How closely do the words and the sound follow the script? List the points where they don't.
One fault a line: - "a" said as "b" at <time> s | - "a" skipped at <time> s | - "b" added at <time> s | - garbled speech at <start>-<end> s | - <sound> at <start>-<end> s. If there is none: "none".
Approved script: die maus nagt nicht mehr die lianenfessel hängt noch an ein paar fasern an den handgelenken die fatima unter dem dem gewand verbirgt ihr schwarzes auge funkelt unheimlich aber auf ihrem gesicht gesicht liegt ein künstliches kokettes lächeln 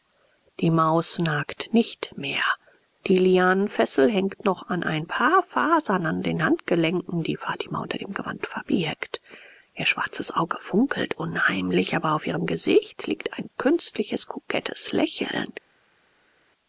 - "dem" skipped at 8.1 s
- "gesicht" skipped at 13.1 s